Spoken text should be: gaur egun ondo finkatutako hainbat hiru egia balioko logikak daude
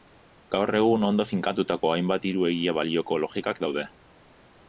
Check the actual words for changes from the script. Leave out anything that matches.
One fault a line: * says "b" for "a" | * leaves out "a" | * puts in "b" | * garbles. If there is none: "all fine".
all fine